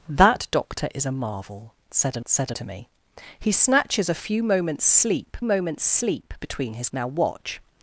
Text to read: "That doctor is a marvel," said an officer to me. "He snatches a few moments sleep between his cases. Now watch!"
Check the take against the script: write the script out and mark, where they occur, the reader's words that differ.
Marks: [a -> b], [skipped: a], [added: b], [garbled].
"That doctor is a marvel," said an [officer -> said] to me. "He snatches a few moments sleep [added: moments sleep] between his [skipped: cases.] Now watch!"